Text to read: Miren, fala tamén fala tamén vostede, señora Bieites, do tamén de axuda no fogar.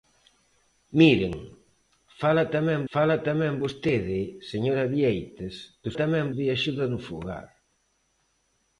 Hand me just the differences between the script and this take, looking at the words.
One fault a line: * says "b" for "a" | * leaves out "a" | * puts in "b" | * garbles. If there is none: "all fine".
all fine